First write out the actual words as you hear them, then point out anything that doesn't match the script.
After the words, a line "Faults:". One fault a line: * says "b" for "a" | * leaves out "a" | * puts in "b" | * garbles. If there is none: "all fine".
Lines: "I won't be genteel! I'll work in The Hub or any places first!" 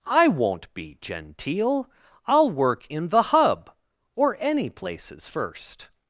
"I won't be genteel! I'll work in The Hub or any places first!"
Faults:
all fine